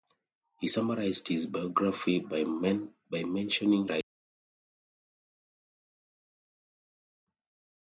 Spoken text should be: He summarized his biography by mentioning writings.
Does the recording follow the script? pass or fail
pass